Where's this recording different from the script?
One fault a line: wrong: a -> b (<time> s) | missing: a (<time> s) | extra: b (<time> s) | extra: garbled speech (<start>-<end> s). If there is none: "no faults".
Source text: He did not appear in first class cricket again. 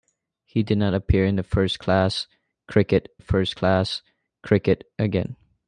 extra: first class cricket (3.2 s)